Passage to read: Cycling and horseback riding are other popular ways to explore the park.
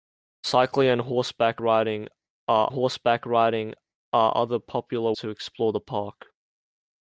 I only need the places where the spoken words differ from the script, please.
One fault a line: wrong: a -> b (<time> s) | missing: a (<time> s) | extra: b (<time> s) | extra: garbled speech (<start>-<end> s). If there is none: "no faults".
extra: horseback riding are (2.7 s)
missing: ways (5.1 s)